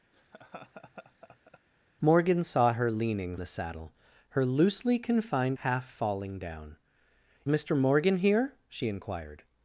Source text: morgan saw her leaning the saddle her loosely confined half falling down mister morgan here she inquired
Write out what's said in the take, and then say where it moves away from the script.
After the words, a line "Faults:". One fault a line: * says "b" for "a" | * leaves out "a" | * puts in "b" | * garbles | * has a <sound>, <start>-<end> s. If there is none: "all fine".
morgan saw her leaning the saddle her loosely confined half falling down mister morgan here she inquired
Faults:
* has a laugh, 0.1-1.6 s